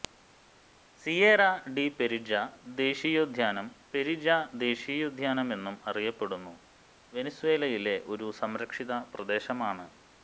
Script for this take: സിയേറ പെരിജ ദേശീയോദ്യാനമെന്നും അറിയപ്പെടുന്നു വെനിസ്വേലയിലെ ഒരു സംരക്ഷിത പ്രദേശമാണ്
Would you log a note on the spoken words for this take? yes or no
yes